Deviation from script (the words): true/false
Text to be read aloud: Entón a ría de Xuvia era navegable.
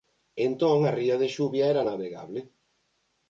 false